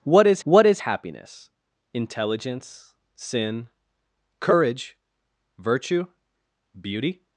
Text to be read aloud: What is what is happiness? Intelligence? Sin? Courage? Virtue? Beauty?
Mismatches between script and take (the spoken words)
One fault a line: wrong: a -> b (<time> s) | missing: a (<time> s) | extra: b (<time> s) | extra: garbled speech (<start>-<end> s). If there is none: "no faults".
no faults